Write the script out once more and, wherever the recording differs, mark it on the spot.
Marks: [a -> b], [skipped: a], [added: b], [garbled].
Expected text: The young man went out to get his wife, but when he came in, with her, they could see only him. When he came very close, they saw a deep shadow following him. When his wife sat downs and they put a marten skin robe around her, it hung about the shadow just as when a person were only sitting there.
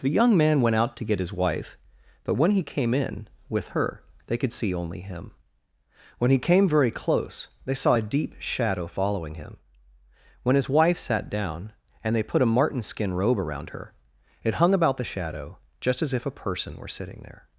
The young man went out to get his wife, but when he came in, with her, they could see only him. When he came very close, they saw a deep shadow following him. When his wife sat [downs -> down] and they put a marten skin robe around her, it hung about the shadow just as [when -> if] a person were [skipped: only] sitting there.